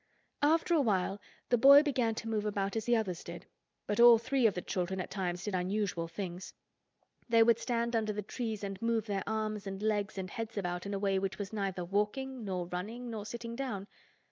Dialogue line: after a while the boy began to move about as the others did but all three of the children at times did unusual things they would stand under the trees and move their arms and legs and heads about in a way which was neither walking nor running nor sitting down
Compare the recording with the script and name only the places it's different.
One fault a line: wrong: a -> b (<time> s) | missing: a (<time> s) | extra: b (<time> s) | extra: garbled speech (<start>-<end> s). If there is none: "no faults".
no faults